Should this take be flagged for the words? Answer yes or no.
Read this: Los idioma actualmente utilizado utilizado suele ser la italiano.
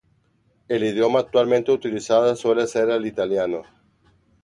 yes